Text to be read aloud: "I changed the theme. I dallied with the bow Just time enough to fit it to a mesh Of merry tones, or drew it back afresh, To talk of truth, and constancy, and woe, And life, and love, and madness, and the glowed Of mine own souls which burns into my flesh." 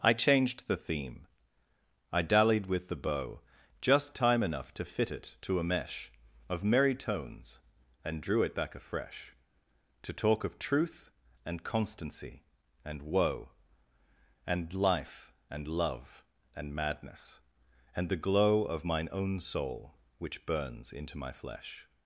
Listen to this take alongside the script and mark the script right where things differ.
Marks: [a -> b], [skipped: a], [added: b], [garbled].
"I changed the theme. I dallied with the bow Just time enough to fit it to a mesh Of merry tones, [or -> and] drew it back afresh, To talk of truth, and constancy, and woe, And life, and love, and madness, and the [glowed -> glow] Of mine own [souls -> soul] which burns into my flesh."